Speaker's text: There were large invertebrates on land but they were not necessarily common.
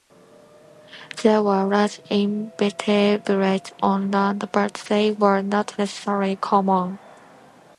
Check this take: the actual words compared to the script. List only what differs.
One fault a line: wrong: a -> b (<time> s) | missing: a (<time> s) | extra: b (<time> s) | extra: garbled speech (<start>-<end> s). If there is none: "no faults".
no faults